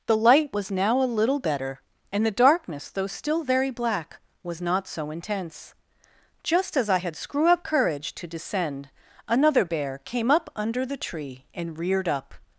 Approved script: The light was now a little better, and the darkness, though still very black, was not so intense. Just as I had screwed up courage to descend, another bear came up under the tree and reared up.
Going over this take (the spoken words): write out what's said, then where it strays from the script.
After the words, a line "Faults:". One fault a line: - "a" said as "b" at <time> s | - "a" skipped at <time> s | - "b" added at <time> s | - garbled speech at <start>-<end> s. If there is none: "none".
The light was now a little better, and the darkness, though still very black, was not so intense. Just as I had screw up courage to descend, another bear came up under the tree and reared up.
Faults:
- "screwed" said as "screw" at 7.1 s